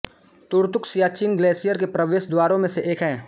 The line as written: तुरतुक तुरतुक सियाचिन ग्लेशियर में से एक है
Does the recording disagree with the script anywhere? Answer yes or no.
yes